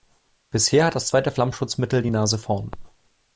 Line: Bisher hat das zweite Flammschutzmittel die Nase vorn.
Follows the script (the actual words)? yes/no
yes